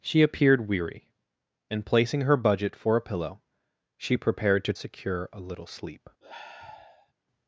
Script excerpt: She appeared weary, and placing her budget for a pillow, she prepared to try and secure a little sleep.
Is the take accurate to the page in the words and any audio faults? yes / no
no